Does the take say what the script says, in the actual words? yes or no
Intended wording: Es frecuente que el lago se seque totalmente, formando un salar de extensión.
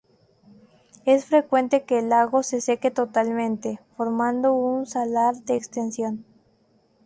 yes